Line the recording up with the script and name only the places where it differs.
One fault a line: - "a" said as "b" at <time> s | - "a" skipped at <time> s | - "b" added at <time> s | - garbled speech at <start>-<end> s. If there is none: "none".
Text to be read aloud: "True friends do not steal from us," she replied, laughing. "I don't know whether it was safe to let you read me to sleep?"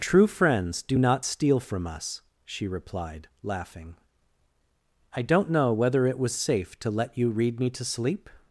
none